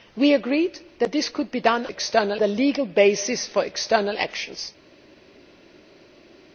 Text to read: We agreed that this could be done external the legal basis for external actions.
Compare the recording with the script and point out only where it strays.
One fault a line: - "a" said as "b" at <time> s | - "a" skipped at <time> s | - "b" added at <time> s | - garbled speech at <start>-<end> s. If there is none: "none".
none